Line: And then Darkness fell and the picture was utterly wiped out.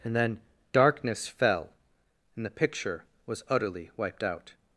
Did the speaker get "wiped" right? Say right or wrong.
right